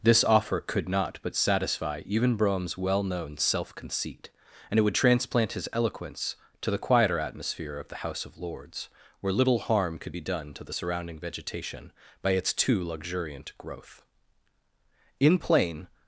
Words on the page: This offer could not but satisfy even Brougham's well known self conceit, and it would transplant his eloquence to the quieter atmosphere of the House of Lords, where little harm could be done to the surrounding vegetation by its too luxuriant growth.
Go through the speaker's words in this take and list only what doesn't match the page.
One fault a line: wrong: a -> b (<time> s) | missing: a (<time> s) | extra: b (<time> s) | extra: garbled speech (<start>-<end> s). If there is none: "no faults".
extra: In plain (15.2 s)